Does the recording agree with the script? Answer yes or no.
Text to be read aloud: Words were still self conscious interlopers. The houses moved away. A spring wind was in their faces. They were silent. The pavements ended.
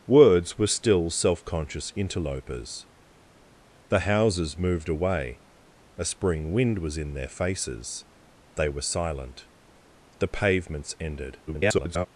no